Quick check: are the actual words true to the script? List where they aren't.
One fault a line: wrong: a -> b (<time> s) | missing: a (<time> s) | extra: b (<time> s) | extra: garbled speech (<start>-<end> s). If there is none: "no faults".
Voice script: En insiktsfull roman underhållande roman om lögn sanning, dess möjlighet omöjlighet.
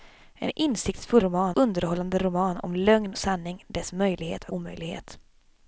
no faults